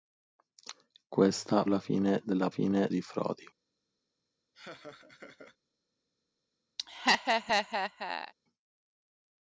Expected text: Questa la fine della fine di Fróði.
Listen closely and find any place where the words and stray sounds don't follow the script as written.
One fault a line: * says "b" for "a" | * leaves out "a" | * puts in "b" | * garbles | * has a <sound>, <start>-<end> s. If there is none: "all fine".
* has a laugh, 4.5-5.6 s
* has a laugh, 6.8-8.3 s